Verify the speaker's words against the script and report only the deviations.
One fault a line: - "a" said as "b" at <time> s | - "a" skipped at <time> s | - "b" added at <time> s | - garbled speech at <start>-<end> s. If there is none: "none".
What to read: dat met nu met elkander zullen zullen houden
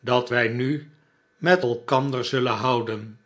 - "met" said as "wij" at 0.3 s
- "zullen" skipped at 2.5 s